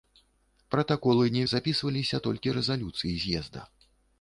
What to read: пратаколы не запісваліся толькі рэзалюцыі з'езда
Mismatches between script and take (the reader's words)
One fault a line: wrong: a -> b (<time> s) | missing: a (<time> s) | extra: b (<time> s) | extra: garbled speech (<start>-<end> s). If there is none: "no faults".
no faults